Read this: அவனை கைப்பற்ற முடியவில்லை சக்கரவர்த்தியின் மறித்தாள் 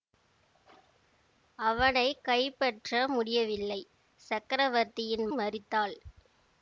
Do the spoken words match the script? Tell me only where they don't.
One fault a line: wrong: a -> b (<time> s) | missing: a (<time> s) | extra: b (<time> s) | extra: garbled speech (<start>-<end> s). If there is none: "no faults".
no faults